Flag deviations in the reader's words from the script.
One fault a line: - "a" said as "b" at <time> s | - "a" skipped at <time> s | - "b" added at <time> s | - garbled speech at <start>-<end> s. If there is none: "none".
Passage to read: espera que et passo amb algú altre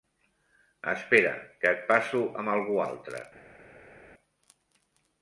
none